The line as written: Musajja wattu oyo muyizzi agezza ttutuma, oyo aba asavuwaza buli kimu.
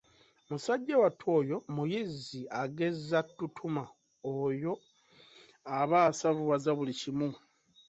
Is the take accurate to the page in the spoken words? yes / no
yes